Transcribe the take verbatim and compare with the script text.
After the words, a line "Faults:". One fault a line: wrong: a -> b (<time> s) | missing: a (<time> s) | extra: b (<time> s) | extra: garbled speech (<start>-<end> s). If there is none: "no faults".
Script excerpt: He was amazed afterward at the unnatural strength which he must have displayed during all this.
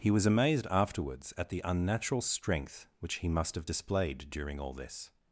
He was amazed afterwards at the unnatural strength which he must have displayed during all this.
Faults:
wrong: afterward -> afterwards (0.7 s)